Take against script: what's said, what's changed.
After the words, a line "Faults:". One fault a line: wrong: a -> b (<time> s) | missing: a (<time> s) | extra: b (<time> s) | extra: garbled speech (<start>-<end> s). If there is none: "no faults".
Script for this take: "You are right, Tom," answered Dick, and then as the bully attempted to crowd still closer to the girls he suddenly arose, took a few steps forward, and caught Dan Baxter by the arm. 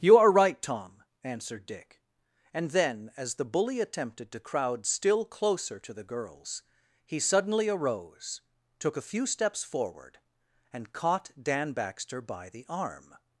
"You are right, Tom," answered Dick, and then as the bully attempted to crowd still closer to the girls he suddenly arose, took a few steps forward, and caught Dan Baxter by the arm.
Faults:
no faults